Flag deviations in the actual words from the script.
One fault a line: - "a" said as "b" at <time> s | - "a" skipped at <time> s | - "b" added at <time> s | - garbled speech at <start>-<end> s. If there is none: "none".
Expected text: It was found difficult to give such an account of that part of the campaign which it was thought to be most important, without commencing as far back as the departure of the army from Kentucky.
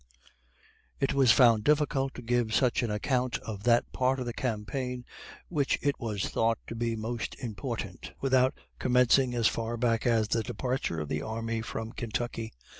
none